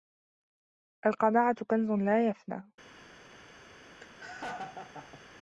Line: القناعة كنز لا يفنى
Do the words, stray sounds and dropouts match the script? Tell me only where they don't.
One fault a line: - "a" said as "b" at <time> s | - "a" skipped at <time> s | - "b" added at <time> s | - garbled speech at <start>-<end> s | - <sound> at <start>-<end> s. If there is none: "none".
- laugh at 4.0-5.2 s